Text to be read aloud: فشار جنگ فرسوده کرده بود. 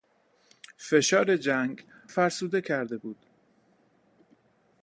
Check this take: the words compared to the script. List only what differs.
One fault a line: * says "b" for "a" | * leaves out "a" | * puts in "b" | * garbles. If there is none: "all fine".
all fine